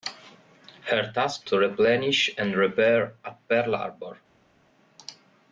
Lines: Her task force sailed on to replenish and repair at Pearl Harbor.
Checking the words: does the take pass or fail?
fail